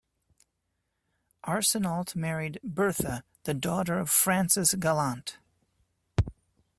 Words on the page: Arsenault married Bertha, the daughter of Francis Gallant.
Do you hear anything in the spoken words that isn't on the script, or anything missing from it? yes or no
no